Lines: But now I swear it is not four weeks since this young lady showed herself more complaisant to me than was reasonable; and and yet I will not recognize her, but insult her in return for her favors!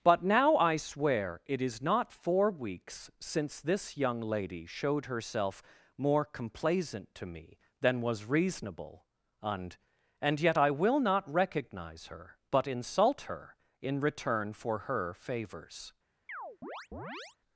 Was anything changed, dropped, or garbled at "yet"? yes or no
no